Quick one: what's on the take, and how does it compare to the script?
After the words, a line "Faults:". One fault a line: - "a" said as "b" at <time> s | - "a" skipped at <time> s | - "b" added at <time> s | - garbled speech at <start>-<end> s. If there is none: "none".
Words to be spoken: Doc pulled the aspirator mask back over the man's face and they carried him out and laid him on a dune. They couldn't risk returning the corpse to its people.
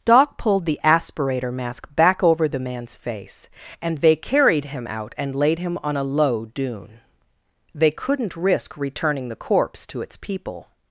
Doc pulled the aspirator mask back over the man's face and they carried him out and laid him on a low dune. They couldn't risk returning the corpse to its people.
Faults:
- "low" added at 6.0 s